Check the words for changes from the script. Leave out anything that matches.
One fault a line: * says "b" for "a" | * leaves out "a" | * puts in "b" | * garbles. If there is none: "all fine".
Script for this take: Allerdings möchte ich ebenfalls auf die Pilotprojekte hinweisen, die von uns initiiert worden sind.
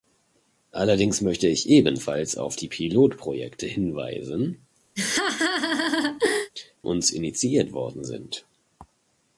* leaves out "die von"